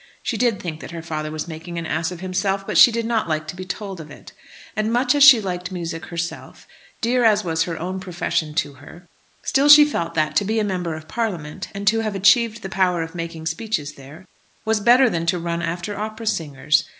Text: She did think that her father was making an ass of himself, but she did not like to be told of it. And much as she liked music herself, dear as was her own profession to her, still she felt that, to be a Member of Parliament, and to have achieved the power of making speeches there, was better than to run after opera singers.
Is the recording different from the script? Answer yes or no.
no